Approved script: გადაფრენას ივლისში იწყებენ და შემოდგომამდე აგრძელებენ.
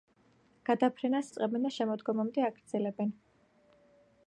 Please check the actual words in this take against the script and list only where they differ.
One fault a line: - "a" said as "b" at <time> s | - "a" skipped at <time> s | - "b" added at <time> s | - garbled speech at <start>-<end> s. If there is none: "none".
- "ივლისში" skipped at 1.3 s